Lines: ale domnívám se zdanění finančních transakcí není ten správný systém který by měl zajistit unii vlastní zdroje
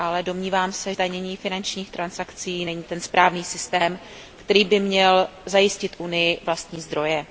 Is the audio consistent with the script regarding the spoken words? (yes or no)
yes